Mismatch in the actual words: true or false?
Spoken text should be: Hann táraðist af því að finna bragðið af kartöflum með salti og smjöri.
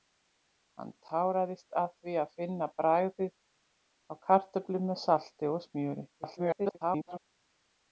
true